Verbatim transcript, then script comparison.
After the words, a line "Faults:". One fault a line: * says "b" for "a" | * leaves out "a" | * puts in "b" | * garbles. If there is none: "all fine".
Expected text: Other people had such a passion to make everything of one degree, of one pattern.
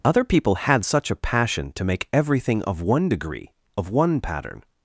Other people had such a passion to make everything of one degree, of one pattern.
Faults:
all fine